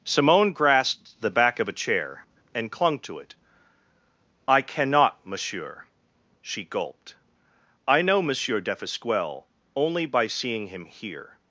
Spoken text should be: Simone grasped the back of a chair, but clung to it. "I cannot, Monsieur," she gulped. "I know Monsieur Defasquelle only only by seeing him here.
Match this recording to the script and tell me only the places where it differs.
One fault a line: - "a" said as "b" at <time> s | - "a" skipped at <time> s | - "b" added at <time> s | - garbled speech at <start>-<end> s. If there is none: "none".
- "but" said as "and" at 2.5 s
- "only" skipped at 10.1 s